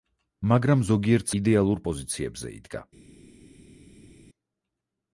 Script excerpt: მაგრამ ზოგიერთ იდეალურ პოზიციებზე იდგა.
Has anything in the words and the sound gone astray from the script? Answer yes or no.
no